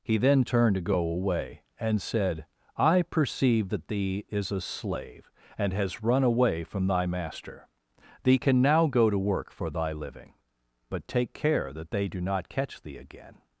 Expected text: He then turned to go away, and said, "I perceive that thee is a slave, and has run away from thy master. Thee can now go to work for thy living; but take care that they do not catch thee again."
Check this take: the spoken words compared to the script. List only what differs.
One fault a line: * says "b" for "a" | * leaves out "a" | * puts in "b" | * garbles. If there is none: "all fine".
all fine